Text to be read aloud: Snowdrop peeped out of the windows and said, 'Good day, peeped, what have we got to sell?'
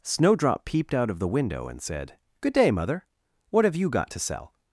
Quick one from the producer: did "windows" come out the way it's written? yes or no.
no